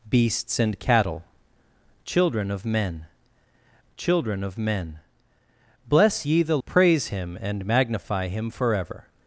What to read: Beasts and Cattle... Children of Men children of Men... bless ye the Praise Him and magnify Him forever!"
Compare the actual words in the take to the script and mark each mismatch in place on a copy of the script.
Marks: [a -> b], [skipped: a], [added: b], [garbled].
Beasts and Cattle... Children of Men children of Men... bless ye the Praise Him and magnify Him forever!"